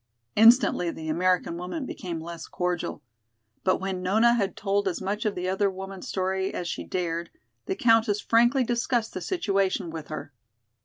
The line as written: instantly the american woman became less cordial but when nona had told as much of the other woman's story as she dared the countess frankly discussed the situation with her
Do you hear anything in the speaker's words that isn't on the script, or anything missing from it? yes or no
no